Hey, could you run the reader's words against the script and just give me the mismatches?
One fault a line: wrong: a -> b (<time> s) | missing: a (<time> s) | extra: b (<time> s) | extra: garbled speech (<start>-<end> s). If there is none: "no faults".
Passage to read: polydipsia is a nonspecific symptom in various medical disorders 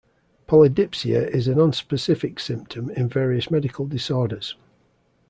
no faults